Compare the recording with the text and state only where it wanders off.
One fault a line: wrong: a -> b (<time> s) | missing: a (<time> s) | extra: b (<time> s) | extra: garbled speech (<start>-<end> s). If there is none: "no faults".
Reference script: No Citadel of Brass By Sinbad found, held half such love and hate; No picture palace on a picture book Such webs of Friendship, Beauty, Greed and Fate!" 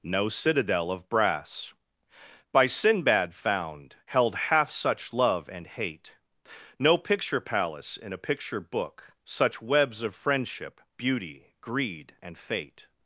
wrong: on -> in (8.0 s)